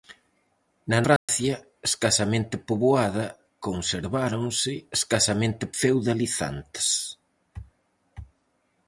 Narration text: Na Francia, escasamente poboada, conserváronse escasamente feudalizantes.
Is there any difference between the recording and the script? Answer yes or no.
no